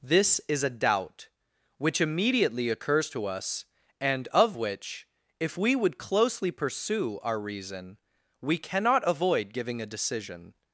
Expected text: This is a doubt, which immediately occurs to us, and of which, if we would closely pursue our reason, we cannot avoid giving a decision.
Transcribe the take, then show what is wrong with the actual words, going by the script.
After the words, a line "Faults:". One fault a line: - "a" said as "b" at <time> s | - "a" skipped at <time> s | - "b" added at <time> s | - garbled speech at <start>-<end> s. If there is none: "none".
This is a doubt, which immediately occurs to us, and of which, if we would closely pursue our reason, we cannot avoid giving a decision.
Faults:
none